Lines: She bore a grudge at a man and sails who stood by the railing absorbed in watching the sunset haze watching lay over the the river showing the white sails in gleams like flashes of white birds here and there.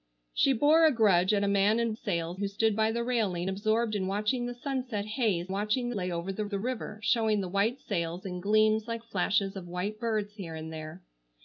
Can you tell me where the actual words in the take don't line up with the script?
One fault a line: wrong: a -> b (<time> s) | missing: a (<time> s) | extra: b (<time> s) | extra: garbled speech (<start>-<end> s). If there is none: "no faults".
no faults